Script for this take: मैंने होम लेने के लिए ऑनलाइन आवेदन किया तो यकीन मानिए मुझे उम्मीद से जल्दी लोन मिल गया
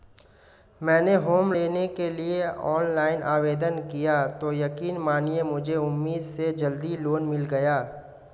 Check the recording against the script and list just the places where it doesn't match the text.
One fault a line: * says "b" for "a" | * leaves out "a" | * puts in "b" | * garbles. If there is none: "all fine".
all fine